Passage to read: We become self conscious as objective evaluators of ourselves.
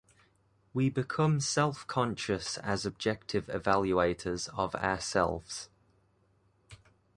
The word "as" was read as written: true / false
true